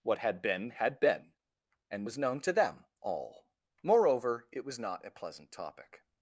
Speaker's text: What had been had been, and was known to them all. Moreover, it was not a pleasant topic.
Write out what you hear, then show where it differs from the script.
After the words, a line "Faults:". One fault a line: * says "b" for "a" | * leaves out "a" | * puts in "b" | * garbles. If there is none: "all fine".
What had been had been, and was known to them all. Moreover, it was not a pleasant topic.
Faults:
all fine